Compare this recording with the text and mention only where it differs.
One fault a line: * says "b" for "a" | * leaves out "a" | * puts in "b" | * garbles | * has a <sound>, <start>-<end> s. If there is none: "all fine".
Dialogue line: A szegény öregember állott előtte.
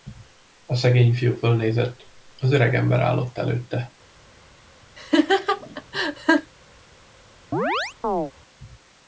* puts in "fiú fölnézett az"
* has a laugh, 5.0-6.5 s
* has a chirp, 7.5-8.3 s